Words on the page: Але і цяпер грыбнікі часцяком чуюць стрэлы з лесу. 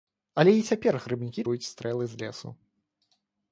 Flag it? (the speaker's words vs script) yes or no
yes